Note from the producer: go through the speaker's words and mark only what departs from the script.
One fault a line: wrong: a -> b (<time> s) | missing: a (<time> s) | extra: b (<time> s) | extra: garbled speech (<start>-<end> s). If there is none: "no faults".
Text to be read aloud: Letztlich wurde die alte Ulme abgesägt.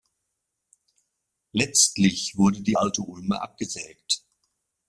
no faults